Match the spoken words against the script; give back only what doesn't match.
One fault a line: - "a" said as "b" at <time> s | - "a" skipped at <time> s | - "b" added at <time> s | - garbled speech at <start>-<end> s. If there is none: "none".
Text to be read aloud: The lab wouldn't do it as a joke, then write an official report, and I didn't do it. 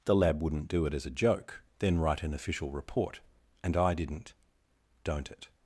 - "do" said as "don't" at 5.0 s